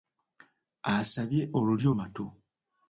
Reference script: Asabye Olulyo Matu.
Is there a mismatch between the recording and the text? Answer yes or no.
no